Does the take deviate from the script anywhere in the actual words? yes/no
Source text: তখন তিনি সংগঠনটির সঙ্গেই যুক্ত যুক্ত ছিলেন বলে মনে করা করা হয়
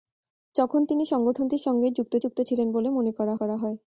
no